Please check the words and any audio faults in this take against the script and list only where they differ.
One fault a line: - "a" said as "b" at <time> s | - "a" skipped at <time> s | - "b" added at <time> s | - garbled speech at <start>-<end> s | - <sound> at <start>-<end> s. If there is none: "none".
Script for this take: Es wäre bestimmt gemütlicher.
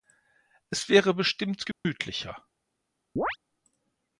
- dropout at 1.7-1.8 s
- chirp at 3.2-3.4 s